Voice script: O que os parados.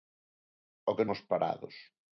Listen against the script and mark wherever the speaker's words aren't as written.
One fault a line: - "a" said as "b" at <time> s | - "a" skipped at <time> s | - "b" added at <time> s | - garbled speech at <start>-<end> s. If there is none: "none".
none